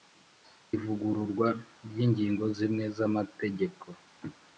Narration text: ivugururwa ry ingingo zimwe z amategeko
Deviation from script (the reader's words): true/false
false